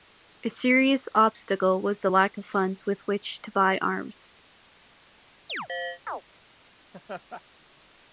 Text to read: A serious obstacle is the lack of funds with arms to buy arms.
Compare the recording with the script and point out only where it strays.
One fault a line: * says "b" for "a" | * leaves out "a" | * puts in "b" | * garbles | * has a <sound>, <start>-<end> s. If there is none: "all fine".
* says "was" for "is"
* says "which" for "arms"
* has a chirp, 5.5-6.2 s
* has a laugh, 6.9-7.4 s